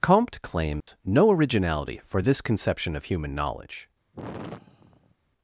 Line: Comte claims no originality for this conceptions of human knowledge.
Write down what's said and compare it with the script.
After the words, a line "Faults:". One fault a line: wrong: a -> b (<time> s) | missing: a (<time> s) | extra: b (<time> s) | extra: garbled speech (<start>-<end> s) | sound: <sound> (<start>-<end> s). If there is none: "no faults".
Comte claims no originality for this conception of human knowledge.
Faults:
sound: dropout (0.8-0.9 s)
wrong: conceptions -> conception (2.4 s)
sound: sigh (4.1-5.1 s)